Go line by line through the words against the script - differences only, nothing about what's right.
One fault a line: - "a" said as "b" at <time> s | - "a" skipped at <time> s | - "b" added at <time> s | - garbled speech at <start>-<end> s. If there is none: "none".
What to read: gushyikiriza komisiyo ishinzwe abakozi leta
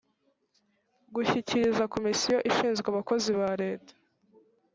- "ba" added at 3.4 s